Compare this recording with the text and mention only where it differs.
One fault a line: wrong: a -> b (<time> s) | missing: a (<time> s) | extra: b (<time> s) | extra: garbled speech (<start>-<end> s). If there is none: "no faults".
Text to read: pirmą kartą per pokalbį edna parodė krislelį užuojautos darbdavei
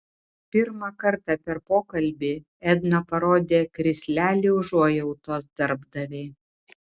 no faults